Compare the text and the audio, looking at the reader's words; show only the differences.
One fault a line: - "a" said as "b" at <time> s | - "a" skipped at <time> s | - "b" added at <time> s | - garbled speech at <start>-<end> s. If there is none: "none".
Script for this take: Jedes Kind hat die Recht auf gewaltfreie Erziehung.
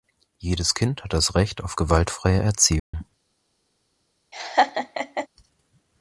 - "die" said as "das" at 1.1 s